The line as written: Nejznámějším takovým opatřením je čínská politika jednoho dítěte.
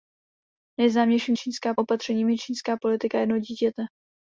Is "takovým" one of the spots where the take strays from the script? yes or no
yes